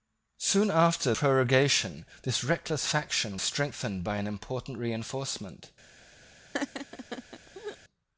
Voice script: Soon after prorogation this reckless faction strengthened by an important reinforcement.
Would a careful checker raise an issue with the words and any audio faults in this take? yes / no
yes